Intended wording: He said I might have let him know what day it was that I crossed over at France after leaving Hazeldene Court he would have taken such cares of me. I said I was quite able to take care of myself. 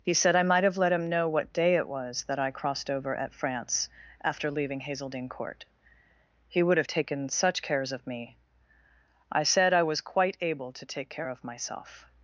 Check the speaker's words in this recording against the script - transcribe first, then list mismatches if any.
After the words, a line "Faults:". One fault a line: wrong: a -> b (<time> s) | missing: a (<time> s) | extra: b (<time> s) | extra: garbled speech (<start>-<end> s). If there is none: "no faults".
He said I might have let him know what day it was that I crossed over at France after leaving Hazeldene Court he would have taken such cares of me. I said I was quite able to take care of myself.
Faults:
no faults